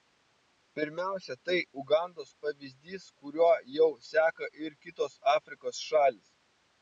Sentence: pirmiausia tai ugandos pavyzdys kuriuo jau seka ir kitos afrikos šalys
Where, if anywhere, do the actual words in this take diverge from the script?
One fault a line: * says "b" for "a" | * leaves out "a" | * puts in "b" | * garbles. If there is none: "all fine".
all fine